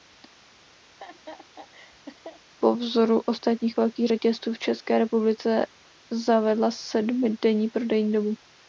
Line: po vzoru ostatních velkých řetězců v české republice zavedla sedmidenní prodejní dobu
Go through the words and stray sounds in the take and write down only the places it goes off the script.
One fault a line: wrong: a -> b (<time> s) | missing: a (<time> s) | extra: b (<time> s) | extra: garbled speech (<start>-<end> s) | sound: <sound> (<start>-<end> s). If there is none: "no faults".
sound: laugh (0.9-2.4 s)